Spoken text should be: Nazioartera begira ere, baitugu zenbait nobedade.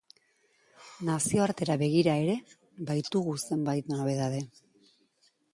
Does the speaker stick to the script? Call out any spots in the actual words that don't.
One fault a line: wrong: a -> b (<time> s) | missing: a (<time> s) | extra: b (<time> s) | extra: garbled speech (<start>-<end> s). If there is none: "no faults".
no faults